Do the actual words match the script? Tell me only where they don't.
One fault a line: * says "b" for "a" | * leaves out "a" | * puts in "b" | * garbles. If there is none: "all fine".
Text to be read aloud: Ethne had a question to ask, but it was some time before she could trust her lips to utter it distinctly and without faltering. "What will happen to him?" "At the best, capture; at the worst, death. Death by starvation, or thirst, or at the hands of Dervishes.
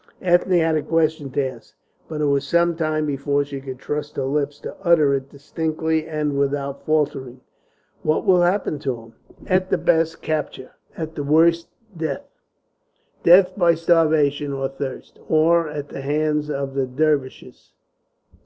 * puts in "the"